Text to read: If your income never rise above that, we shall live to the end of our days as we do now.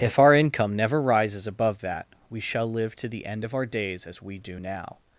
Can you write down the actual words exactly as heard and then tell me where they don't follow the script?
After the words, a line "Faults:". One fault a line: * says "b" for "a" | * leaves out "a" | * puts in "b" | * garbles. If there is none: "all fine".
If our income never rises above that, we shall live to the end of our days as we do now.
Faults:
* says "our" for "your"
* says "rises" for "rise"